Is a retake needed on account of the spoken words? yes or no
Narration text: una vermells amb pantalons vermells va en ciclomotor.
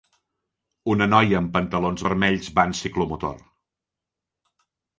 yes